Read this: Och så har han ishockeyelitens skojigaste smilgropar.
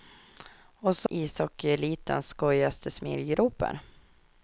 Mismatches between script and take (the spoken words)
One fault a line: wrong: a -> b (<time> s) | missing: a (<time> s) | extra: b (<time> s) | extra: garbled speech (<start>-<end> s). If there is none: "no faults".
missing: har han (1.1 s)